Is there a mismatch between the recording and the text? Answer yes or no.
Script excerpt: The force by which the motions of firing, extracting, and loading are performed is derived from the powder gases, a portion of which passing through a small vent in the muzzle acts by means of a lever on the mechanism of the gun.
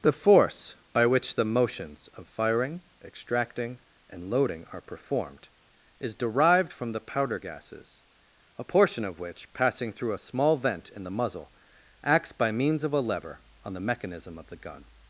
no